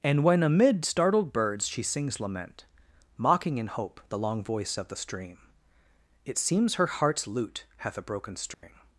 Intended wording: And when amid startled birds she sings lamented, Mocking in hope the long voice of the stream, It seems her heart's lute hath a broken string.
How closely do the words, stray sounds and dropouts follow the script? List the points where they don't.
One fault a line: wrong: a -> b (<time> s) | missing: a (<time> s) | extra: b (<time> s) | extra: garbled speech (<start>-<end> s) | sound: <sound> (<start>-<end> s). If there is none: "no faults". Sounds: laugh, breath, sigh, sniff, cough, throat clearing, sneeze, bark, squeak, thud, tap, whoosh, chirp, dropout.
wrong: lamented -> lament (2.2 s)
sound: dropout (8.5-8.6 s)